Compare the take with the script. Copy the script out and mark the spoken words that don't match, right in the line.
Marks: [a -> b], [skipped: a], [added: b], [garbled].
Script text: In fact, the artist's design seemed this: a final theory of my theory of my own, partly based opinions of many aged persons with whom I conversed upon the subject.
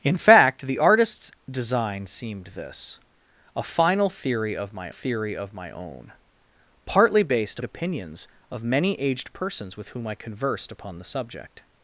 In fact, the artist's design seemed this: a final theory of my theory of my own, partly based opinions of many aged persons with whom I conversed upon the subject.